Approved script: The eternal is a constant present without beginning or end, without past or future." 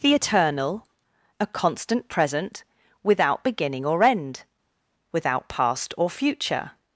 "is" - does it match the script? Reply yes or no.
no